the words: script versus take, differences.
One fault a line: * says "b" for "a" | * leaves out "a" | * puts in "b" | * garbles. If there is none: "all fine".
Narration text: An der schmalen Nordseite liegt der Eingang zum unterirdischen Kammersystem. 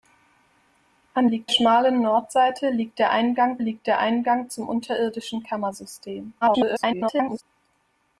* says "liegt" for "der"
* puts in "liegt der Eingang"
* garbles